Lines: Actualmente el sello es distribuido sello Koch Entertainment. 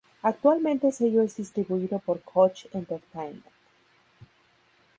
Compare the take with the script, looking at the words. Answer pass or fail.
fail